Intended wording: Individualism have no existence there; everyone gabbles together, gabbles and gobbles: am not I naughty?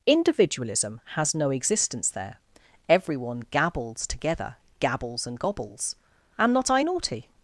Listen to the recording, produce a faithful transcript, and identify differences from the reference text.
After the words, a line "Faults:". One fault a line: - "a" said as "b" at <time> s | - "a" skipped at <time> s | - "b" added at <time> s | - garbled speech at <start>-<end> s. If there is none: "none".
Individualism has no existence there; everyone gabbles together, gabbles and gobbles: am not I naughty?
Faults:
- "have" said as "has" at 1.1 s